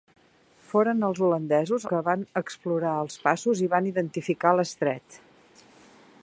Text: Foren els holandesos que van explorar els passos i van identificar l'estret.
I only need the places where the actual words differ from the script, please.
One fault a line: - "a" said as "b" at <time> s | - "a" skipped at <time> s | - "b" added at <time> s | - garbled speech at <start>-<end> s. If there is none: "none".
none